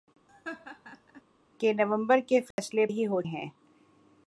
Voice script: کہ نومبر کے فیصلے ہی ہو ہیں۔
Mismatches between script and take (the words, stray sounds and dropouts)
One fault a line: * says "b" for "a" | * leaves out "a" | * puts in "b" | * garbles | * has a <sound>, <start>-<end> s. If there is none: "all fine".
* has a laugh, 0.3-1.2 s
* has a dropout, 2.5-2.6 s